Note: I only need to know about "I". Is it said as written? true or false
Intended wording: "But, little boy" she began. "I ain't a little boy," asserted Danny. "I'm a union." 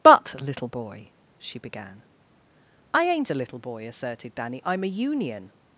true